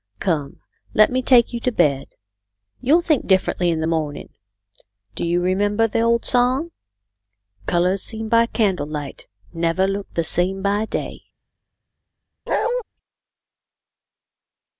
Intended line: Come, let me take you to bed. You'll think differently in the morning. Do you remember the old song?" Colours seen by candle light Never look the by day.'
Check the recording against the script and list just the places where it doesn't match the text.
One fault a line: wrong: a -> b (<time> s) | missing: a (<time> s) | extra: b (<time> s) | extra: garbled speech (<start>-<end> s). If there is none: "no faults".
extra: same (10.2 s)